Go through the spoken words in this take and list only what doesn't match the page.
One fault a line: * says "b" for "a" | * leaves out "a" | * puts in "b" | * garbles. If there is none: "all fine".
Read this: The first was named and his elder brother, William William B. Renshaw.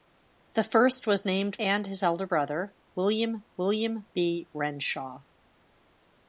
all fine